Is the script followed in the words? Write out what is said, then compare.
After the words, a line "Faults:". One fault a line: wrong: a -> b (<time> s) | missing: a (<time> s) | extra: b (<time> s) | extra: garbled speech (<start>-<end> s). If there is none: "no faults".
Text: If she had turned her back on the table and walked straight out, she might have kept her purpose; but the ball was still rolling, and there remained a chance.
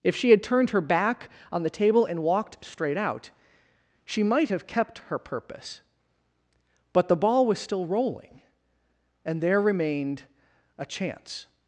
If she had turned her back on the table and walked straight out, she might have kept her purpose; but the ball was still rolling, and there remained a chance.
Faults:
no faults